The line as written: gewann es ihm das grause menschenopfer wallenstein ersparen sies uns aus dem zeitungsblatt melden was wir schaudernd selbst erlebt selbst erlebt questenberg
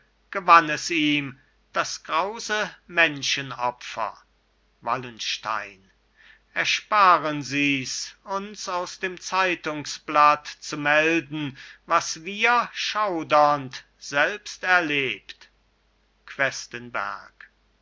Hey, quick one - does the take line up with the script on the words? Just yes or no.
no